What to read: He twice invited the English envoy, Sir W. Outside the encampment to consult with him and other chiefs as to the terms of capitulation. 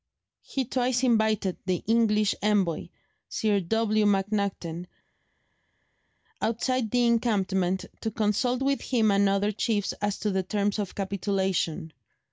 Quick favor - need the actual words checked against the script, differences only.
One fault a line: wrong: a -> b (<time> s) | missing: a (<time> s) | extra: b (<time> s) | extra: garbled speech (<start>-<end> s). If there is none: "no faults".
extra: MacNaghten (4.1 s)